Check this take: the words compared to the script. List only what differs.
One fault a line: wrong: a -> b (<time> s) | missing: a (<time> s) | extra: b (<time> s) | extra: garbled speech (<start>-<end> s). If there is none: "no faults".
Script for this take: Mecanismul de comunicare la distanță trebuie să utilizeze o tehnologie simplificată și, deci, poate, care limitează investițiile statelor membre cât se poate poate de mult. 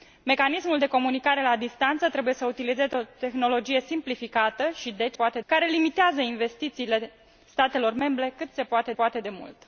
no faults